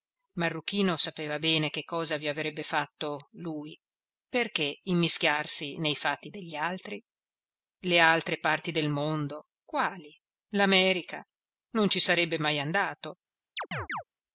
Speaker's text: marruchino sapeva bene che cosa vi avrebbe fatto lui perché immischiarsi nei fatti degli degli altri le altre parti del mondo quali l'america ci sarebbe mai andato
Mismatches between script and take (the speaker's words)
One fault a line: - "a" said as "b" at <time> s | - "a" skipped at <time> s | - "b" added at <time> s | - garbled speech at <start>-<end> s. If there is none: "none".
- "degli" skipped at 6.5 s
- "non" added at 11.7 s